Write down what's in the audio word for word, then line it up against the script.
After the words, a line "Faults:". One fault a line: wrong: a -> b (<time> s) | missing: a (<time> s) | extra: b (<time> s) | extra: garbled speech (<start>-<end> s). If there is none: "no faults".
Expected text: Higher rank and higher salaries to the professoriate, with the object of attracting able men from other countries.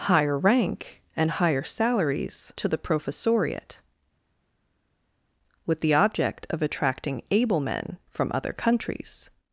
Higher rank and higher salaries to the professoriate, with the object of attracting able men from other countries.
Faults:
no faults